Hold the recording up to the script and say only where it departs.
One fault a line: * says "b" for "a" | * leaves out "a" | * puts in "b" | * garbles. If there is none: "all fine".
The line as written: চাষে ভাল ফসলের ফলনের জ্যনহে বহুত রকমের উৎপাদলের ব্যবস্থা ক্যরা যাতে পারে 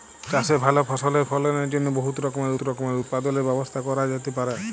* puts in "রকমের"